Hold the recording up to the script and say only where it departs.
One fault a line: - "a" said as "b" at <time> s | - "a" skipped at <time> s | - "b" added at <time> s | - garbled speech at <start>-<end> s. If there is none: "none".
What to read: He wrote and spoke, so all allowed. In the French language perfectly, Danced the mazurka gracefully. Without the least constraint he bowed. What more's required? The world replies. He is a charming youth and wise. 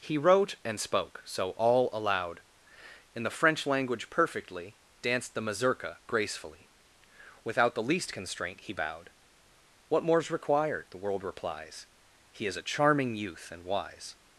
none